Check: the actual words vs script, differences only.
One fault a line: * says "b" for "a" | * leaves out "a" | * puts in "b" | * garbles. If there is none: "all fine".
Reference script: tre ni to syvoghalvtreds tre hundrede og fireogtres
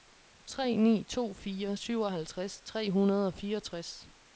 * puts in "fire"